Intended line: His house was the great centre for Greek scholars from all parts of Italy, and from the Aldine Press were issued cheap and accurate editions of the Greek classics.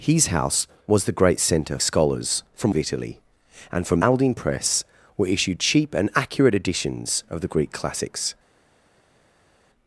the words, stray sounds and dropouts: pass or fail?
fail